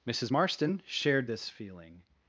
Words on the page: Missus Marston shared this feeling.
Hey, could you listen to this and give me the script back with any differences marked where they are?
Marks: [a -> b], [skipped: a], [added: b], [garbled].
Missus Marston shared this feeling.